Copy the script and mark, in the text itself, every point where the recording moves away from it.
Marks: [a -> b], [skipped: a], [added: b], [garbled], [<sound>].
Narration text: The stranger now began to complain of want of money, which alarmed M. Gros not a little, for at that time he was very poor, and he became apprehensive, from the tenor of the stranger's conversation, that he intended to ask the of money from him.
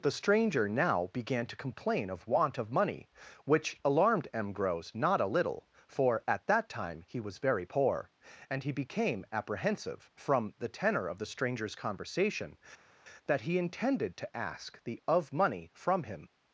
The stranger now began to complain of want of money, which alarmed M. Gros not a little, for at that time he was very poor, and he became apprehensive, from the tenor of the stranger's conversation, that he intended to ask the of money from him.